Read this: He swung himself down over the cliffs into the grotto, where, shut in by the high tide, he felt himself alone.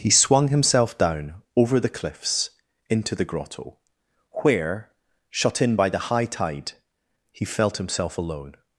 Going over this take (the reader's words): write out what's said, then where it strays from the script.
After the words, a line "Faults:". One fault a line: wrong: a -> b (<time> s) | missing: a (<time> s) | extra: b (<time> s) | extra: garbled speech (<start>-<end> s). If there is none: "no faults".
He swung himself down over the cliffs into the grotto, where, shut in by the high tide, he felt himself alone.
Faults:
no faults